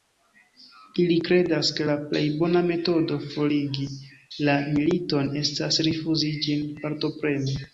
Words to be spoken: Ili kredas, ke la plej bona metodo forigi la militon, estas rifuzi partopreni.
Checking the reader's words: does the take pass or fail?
fail